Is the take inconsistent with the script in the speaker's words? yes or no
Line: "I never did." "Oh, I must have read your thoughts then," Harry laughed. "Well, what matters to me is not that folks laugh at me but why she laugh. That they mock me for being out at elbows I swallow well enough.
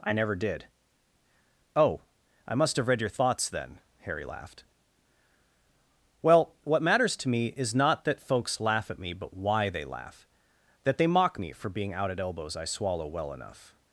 yes